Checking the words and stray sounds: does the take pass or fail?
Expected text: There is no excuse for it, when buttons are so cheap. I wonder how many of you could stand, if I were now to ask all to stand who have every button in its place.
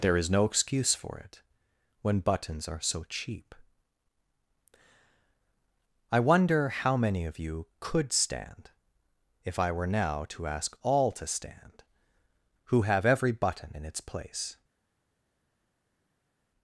pass